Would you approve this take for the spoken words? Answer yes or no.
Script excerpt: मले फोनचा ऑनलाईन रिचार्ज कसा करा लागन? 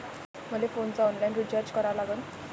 no